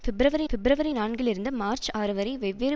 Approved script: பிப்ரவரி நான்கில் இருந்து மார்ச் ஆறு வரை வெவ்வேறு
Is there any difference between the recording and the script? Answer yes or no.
yes